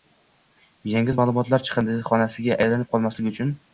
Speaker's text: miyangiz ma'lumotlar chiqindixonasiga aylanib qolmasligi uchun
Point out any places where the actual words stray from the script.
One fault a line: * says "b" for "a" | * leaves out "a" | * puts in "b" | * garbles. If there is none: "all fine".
all fine